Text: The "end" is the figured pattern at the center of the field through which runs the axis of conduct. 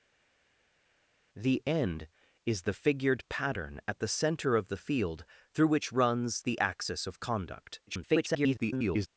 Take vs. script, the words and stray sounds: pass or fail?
fail